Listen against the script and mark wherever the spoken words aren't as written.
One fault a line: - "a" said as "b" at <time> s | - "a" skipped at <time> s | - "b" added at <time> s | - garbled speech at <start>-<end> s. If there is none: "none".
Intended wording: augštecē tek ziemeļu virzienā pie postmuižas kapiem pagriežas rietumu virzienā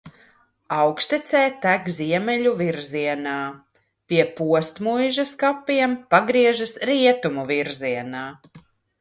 none